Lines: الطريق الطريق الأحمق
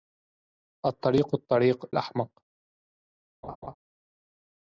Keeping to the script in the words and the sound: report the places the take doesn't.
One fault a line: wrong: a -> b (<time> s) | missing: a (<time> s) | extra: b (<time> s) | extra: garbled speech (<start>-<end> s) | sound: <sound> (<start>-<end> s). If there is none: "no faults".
sound: laugh (3.4-3.7 s)